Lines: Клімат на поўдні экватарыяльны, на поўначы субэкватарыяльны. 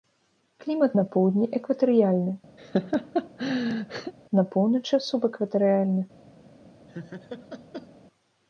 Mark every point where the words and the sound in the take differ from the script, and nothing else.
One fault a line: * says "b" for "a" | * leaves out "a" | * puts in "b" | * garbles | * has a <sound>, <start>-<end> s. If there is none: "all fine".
* has a laugh, 2.6-4.1 s
* has a laugh, 6.9-7.9 s